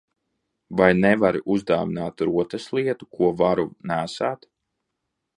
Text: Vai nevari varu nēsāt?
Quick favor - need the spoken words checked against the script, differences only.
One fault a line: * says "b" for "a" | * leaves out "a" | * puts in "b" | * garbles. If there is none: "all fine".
* puts in "uzdāvināt rotaslietu ko"